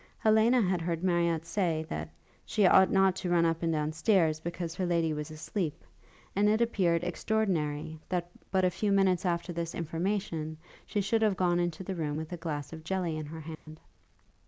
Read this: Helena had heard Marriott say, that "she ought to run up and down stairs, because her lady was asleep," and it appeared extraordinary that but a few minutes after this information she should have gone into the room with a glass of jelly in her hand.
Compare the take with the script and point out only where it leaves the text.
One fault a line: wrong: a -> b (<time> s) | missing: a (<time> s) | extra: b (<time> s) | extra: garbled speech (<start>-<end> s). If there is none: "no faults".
extra: not (2.9 s)